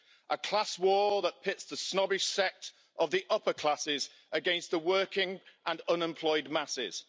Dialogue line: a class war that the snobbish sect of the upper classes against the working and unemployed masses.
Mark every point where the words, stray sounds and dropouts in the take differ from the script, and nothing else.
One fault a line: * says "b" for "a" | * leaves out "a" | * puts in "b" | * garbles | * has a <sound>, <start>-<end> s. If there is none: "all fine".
* puts in "pits"